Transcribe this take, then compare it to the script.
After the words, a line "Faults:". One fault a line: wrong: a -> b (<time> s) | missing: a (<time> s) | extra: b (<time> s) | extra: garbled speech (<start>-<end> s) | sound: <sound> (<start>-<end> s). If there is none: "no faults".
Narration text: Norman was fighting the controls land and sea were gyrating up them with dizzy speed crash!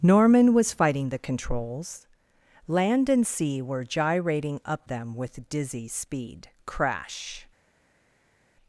Norman was fighting the controls land and sea were gyrating up them with dizzy speed crash!
Faults:
no faults